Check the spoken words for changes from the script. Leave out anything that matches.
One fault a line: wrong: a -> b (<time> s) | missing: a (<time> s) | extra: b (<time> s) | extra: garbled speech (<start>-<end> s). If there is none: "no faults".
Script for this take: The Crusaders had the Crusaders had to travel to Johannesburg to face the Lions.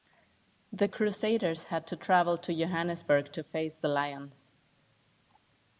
missing: the Crusaders had (1.9 s)